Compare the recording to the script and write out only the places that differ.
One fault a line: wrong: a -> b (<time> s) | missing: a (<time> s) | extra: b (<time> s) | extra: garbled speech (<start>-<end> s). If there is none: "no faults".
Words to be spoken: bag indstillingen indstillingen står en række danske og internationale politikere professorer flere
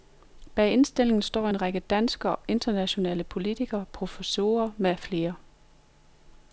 missing: indstillingen (1.2 s)
extra: med (4.8 s)